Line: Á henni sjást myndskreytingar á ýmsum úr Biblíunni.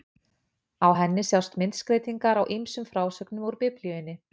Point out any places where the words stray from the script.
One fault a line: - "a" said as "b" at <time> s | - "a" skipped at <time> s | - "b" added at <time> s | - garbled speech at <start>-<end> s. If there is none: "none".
- "frásögnum" added at 2.9 s